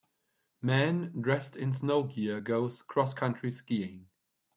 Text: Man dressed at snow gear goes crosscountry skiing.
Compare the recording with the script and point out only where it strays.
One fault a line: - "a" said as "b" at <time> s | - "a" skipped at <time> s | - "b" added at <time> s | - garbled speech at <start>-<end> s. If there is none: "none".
- "at" said as "in" at 1.6 s